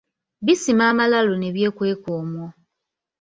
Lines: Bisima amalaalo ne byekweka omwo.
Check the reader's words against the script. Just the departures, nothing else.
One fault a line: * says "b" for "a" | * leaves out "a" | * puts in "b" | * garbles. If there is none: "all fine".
all fine